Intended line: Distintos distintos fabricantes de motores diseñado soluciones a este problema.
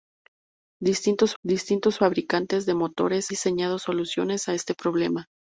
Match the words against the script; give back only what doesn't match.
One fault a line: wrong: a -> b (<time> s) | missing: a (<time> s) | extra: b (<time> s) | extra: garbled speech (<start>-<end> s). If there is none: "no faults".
no faults